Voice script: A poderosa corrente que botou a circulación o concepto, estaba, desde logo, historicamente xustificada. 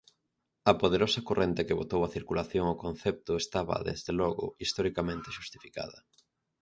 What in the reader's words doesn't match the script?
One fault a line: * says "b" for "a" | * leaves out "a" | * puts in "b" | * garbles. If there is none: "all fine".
all fine